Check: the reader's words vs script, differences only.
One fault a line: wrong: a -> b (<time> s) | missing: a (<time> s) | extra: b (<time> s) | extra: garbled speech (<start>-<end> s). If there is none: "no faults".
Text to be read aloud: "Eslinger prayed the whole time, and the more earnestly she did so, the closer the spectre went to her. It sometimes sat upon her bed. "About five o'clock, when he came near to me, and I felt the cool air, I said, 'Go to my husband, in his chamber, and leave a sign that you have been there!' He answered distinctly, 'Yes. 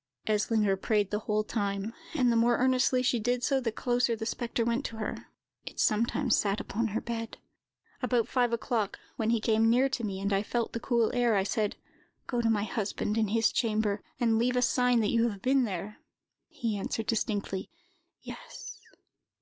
no faults